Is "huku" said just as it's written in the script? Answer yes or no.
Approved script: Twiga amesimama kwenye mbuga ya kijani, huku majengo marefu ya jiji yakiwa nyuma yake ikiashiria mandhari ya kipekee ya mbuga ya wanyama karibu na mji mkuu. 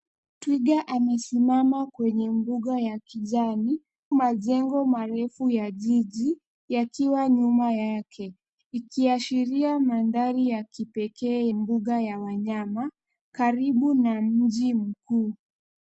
no